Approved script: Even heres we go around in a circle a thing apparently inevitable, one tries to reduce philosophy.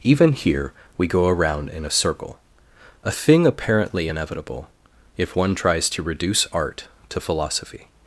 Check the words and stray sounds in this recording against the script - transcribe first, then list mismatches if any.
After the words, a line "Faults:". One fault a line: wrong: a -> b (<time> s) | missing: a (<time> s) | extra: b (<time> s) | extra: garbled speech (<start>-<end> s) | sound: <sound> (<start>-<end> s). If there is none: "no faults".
Even here we go around in a circle a thing apparently inevitable, if one tries to reduce art to philosophy.
Faults:
wrong: heres -> here (0.3 s)
extra: if (5.2 s)
extra: art to (6.5 s)